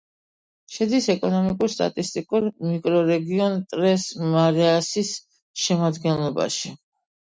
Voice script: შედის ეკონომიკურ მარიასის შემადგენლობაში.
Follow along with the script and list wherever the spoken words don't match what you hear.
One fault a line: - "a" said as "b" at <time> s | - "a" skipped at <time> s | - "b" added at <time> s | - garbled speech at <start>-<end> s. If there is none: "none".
- "სტატისტიკურ მიკრორეგიონ ტრეს" added at 1.7 s